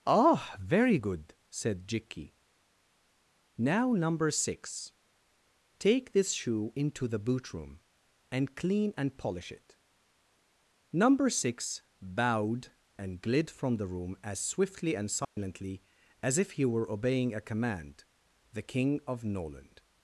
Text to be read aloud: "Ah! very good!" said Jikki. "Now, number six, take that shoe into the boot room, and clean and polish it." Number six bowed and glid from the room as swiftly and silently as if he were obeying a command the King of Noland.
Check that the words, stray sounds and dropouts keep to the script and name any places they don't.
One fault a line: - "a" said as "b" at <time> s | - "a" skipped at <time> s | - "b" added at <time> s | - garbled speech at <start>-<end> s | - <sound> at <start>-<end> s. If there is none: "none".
- "that" said as "this" at 6.1 s
- dropout at 15.2-15.4 s